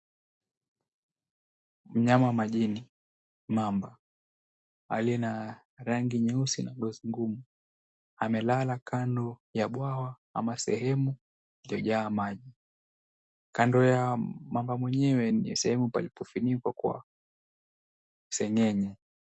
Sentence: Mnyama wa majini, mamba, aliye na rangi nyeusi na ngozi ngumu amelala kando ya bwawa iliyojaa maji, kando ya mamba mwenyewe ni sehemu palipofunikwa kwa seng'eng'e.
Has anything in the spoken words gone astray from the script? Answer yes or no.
yes